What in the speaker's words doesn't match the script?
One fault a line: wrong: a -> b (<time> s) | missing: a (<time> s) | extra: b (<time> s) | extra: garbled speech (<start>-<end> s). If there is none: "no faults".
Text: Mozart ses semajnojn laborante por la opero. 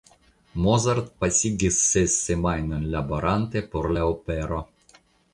extra: pasigis (1.2 s)